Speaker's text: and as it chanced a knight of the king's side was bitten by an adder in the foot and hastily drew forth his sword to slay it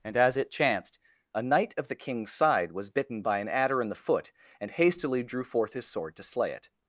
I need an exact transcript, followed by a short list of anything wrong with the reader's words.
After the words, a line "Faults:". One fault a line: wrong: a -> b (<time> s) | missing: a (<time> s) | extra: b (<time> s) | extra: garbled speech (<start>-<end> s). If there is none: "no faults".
and as it chanced a knight of the king's side was bitten by an adder in the foot and hastily drew forth his sword to slay it
Faults:
no faults